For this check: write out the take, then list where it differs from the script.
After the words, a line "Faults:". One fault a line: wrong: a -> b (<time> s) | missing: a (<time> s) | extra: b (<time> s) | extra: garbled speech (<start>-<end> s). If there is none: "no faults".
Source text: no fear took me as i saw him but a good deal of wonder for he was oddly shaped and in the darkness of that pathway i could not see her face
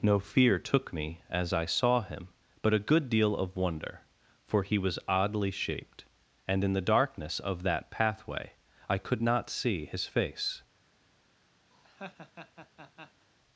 no fear took me as i saw him but a good deal of wonder for he was oddly shaped and in the darkness of that pathway i could not see his face
Faults:
wrong: her -> his (9.9 s)